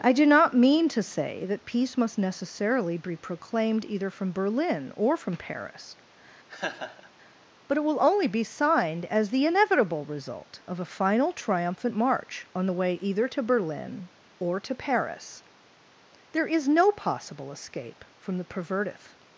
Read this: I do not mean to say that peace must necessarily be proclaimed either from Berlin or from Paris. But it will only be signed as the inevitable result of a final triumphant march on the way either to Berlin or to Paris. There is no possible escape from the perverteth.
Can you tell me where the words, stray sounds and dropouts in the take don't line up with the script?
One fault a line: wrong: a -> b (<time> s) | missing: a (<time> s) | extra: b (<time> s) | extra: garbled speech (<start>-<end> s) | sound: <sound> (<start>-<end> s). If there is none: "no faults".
sound: laugh (6.5-7.1 s)